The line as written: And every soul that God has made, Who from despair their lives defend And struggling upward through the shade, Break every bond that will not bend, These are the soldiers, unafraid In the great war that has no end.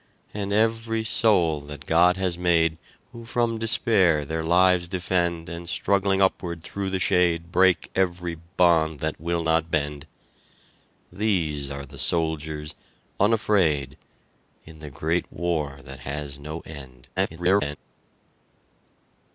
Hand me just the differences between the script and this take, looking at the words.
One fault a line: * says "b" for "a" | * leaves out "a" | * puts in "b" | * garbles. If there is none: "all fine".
* garbles